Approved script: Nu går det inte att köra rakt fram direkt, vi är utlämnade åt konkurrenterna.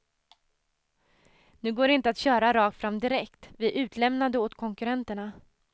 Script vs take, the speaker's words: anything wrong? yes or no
no